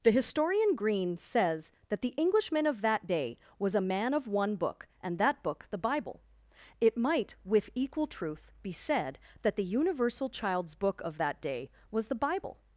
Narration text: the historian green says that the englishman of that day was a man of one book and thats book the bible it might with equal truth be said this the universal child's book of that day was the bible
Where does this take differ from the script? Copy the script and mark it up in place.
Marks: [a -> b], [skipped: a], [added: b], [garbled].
the historian green says that the englishman of that day was a man of one book and [thats -> that] book the bible it might with equal truth be said [this -> that] the universal child's book of that day was the bible